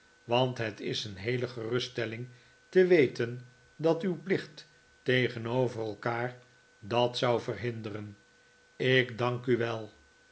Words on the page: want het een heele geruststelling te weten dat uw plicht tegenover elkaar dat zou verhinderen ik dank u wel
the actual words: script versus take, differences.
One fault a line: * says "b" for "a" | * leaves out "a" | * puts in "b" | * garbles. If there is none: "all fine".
* puts in "is"